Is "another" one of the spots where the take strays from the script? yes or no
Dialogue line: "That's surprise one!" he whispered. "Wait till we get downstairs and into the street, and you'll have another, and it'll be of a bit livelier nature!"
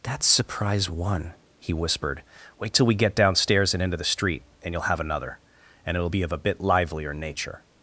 no